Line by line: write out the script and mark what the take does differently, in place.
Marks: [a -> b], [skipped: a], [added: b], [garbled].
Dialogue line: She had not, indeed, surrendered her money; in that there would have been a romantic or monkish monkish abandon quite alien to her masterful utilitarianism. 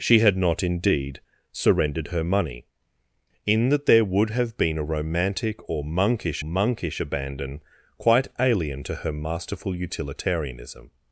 She had not, indeed, surrendered her money; in that there would have been a romantic or monkish monkish abandon quite alien to her masterful utilitarianism.